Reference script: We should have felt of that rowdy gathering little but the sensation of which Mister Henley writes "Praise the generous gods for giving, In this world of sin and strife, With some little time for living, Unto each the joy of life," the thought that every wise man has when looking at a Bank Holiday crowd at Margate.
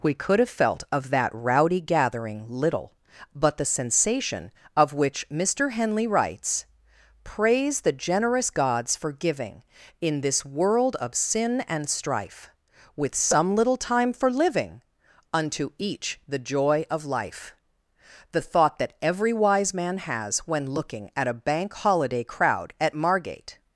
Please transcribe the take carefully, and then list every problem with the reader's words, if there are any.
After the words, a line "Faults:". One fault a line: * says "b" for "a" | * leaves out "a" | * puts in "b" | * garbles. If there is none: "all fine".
We could have felt of that rowdy gathering little but the sensation of which Mister Henley writes "Praise the generous gods for giving, In this world of sin and strife, With some little time for living, Unto each the joy of life," the thought that every wise man has when looking at a Bank Holiday crowd at Margate.
Faults:
* says "could" for "should"